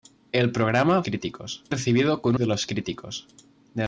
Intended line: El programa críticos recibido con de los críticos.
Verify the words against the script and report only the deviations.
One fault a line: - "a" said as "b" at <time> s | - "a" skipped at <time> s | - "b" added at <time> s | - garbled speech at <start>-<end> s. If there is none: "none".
none